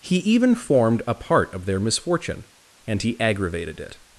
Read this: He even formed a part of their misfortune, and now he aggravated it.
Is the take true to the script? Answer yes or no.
no